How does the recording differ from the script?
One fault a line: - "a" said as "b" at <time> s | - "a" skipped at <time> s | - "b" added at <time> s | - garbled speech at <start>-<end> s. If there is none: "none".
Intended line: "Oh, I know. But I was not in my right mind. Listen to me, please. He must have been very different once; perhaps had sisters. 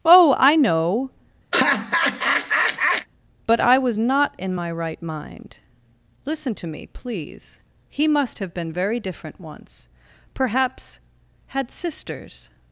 none